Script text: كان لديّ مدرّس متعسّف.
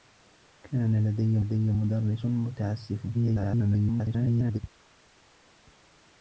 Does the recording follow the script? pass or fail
fail